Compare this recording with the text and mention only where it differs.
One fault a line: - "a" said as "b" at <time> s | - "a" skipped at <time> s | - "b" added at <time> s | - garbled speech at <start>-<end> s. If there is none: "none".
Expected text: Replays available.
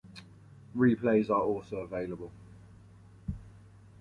- "are also" added at 1.3 s